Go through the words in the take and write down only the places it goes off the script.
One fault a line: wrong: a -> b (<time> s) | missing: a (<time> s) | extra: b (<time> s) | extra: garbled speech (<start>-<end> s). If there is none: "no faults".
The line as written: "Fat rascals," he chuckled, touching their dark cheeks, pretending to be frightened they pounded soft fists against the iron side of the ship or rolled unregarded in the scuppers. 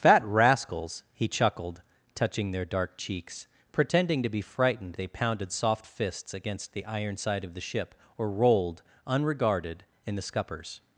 no faults